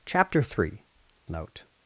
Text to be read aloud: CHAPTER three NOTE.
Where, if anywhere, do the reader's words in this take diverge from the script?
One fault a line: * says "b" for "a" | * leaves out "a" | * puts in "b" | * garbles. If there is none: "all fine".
all fine